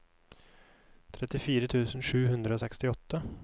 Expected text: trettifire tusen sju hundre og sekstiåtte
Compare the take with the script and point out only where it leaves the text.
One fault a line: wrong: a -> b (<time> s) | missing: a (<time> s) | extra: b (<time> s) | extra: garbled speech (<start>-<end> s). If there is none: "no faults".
no faults